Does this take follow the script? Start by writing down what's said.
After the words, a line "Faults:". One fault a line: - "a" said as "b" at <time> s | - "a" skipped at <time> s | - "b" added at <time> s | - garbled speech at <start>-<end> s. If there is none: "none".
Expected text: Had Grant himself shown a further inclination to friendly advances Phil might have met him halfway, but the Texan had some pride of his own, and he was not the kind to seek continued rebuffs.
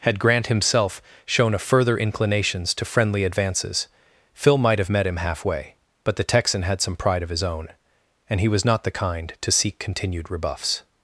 Had Grant himself shown a further inclinations to friendly advances Phil might have met him halfway, but the Texan had some pride of his own, and he was not the kind to seek continued rebuffs.
Faults:
- "inclination" said as "inclinations" at 2.0 s